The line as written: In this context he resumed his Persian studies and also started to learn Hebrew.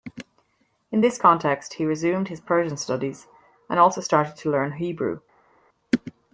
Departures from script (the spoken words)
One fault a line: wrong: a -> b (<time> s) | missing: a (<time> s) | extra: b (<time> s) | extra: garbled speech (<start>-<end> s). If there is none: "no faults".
no faults